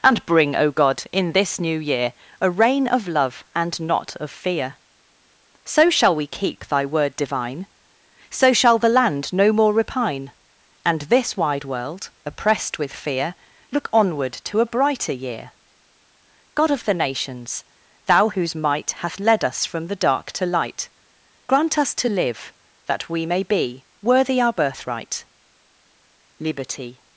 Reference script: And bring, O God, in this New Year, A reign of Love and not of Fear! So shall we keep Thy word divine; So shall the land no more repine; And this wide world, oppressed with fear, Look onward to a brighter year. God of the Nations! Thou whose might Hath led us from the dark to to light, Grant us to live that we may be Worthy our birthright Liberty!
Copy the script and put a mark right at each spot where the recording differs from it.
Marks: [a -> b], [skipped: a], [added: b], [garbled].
And bring, O God, in this New Year, A reign of Love and not of Fear! So shall we keep Thy word divine; So shall the land no more repine; And this wide world, oppressed with fear, Look onward to a brighter year. God of the Nations! Thou whose might Hath led us from the dark to [skipped: to] light, Grant us to live that we may be Worthy our birthright Liberty!